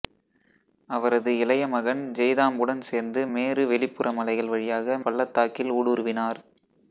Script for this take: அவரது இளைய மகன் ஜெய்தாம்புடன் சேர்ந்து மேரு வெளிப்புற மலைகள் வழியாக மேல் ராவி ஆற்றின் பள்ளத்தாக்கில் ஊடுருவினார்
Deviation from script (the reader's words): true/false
true